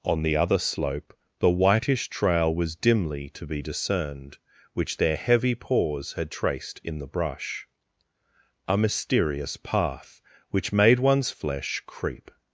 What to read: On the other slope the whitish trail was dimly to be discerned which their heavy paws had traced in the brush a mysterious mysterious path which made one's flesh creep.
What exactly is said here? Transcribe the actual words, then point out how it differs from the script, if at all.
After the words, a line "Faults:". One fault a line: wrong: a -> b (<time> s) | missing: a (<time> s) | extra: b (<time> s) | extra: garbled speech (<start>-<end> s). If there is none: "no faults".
On the other slope the whitish trail was dimly to be discerned which their heavy paws had traced in the brush a mysterious path which made one's flesh creep.
Faults:
missing: mysterious (9.6 s)